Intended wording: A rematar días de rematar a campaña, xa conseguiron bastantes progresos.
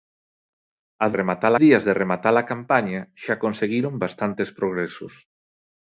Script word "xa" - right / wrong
right